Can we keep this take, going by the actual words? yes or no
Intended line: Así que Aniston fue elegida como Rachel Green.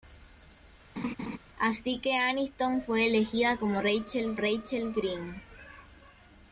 no